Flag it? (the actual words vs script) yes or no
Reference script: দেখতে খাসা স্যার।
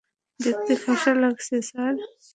yes